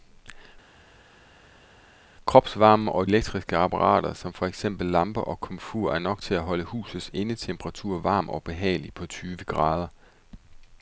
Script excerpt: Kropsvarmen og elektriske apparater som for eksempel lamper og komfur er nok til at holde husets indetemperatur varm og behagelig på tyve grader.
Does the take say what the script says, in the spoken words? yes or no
yes